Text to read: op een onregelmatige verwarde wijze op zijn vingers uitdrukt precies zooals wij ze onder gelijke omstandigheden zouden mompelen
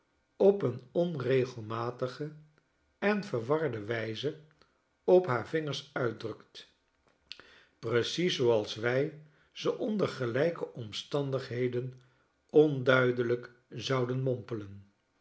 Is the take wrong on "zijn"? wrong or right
wrong